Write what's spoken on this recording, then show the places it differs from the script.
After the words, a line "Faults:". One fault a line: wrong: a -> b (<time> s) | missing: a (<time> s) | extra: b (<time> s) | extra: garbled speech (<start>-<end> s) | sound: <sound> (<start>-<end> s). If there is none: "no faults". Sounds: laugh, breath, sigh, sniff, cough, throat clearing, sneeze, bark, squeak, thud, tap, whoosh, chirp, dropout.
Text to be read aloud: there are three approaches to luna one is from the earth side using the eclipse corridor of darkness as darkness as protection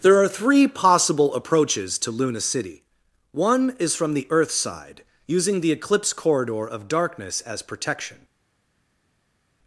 there are three possible approaches to luna city one is from the earth side using the eclipse corridor of darkness as protection
Faults:
extra: possible (0.7 s)
extra: city (2.4 s)
missing: darkness as (7.6 s)